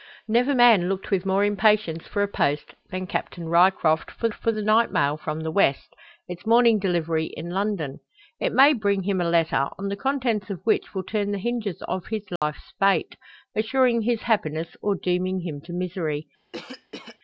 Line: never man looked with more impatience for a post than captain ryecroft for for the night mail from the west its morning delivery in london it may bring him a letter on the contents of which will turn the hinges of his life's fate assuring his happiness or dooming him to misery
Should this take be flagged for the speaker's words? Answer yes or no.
no